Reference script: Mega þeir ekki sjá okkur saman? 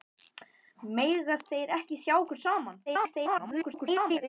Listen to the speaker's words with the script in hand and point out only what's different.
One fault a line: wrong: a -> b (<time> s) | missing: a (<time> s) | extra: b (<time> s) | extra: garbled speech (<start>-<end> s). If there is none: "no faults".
extra: garbled speech (2.9-4.3 s)